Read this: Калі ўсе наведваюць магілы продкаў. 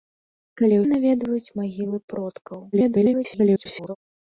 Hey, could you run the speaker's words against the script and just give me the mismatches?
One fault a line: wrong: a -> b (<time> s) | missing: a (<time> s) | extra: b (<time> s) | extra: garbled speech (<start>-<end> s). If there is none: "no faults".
missing: ўсе (0.8 s)
extra: garbled speech (2.7-4.0 s)